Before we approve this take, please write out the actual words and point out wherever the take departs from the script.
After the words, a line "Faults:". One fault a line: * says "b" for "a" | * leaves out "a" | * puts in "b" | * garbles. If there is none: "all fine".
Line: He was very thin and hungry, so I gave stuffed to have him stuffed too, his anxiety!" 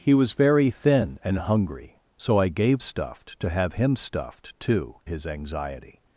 He was very thin and hungry, so I gave stuffed to have him stuffed too, his anxiety!"
Faults:
all fine